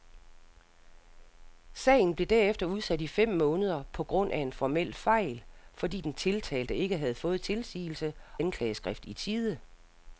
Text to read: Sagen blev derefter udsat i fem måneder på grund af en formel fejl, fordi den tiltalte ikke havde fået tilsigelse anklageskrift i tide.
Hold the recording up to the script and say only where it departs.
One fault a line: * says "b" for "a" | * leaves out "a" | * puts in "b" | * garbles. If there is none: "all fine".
all fine